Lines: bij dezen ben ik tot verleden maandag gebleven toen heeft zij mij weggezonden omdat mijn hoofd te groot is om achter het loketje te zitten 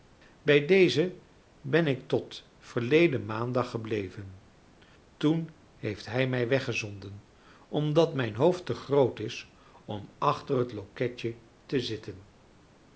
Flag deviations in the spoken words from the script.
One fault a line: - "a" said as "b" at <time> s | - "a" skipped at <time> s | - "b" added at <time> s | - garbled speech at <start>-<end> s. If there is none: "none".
- "zij" said as "hij" at 6.0 s